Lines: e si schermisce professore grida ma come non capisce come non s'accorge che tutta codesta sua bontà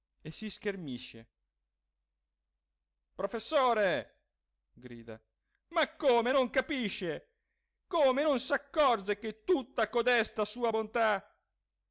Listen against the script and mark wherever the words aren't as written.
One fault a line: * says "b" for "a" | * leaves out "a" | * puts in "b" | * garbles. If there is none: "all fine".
all fine